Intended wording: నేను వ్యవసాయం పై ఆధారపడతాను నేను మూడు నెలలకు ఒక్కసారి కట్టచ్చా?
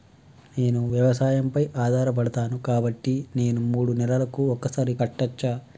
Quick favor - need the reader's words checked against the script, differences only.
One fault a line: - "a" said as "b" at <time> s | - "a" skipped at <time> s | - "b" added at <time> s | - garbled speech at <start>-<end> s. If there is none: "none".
- "కాబట్టి" added at 2.6 s